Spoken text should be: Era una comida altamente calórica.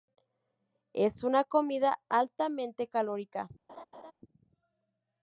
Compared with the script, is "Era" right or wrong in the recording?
wrong